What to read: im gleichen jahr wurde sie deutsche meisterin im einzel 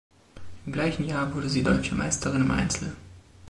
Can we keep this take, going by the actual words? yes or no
yes